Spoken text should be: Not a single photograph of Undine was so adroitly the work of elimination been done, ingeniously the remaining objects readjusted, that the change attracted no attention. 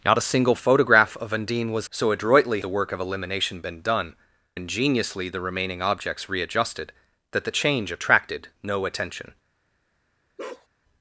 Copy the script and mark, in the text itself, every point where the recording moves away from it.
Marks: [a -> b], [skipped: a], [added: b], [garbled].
Not a single photograph of Undine was so adroitly the work of elimination been done, ingeniously the remaining objects readjusted, that the change attracted no attention.